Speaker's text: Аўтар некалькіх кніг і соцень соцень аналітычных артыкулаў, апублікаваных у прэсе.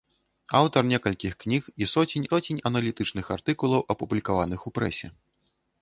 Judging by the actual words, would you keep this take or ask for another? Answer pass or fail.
pass